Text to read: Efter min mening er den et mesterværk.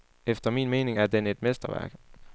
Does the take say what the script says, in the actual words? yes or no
yes